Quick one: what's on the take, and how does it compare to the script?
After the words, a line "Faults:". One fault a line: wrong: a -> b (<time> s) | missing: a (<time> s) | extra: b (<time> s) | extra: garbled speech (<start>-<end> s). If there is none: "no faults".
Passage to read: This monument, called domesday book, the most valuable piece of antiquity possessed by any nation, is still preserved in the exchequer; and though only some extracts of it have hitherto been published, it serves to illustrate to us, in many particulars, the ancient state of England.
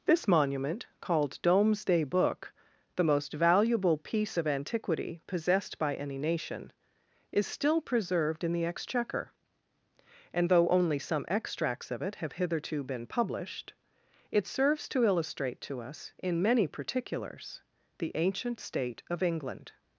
This monument, called domesday book, the most valuable piece of antiquity possessed by any nation, is still preserved in the exchequer; and though only some extracts of it have hitherto been published, it serves to illustrate to us, in many particulars, the ancient state of England.
Faults:
no faults